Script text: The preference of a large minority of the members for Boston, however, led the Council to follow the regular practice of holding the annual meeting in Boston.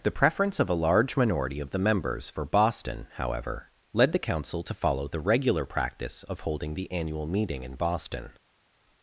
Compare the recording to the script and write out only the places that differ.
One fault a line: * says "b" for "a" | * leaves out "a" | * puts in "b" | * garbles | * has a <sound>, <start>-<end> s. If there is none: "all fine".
all fine